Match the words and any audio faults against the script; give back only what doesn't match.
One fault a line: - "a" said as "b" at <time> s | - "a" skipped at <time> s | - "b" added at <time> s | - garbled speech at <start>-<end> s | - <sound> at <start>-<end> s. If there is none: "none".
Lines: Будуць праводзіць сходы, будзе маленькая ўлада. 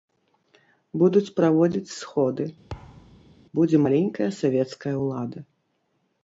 - thud at 2.7-3.4 s
- "савецкая" added at 4.4 s